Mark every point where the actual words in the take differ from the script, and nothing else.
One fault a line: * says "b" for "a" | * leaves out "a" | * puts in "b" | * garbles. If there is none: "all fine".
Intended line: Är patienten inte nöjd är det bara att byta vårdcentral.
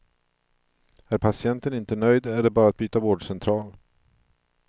all fine